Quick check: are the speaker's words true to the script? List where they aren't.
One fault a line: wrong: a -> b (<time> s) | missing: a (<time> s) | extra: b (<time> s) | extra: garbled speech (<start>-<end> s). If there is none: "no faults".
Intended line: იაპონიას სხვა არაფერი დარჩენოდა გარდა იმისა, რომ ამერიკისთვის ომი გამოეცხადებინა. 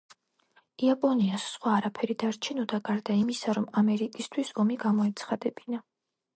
no faults